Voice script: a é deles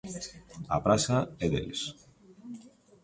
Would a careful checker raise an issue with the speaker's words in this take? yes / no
yes